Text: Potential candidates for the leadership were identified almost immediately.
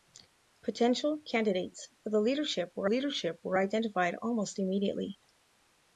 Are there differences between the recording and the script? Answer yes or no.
yes